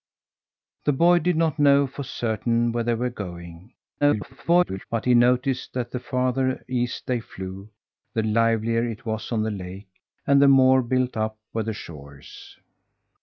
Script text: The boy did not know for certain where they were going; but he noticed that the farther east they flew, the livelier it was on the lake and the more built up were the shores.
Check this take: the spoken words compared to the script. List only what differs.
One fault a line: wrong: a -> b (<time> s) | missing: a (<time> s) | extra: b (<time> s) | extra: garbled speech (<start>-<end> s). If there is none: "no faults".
extra: garbled speech (4.0-4.9 s)